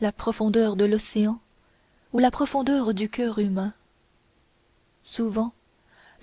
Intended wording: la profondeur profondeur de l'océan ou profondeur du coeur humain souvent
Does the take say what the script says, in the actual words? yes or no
no